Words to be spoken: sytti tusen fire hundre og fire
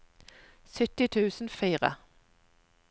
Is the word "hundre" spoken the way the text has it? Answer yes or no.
no